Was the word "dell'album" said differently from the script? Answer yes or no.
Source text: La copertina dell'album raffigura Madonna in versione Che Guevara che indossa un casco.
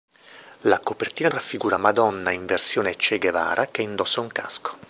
yes